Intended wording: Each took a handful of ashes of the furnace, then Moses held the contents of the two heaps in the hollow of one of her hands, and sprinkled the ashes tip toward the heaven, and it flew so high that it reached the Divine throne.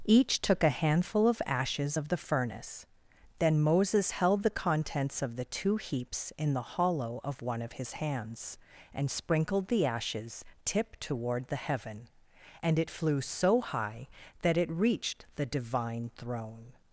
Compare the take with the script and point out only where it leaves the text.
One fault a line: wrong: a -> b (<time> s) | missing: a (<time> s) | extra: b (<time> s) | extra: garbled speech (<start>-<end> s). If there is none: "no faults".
wrong: her -> his (7.7 s)